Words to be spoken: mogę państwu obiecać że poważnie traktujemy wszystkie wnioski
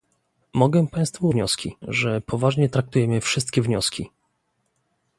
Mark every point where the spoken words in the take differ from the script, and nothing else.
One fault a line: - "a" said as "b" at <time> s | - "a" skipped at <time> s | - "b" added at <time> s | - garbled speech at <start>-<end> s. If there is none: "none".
- "obiecać" said as "wnioski" at 1.3 s